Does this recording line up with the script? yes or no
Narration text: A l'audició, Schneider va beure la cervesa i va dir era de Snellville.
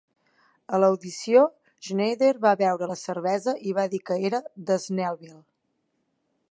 no